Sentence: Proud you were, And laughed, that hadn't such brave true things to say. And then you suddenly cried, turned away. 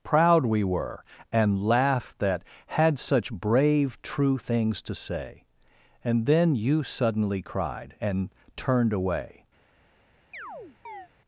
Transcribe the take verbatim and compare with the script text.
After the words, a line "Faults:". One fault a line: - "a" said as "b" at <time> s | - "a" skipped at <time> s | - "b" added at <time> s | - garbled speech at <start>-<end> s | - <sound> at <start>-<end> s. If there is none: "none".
Proud we were, And laughed, that had such brave true things to say. And then you suddenly cried, and turned away.
Faults:
- "you" said as "we" at 0.5 s
- "hadn't" said as "had" at 2.6 s
- "and" added at 8.0 s
- chirp at 10.3-11.1 s